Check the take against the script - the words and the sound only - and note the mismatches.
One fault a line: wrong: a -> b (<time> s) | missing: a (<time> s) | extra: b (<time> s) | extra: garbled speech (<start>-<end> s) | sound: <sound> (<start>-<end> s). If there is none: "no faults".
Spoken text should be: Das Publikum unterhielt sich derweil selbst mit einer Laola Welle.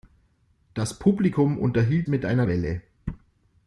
missing: sich derweil selbst (2.1 s)
missing: Laola (2.4 s)